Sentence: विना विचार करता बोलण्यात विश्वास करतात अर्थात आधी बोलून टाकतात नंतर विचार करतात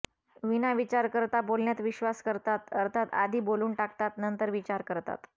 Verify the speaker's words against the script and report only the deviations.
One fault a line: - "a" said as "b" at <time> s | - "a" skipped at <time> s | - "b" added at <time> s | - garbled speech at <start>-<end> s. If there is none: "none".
none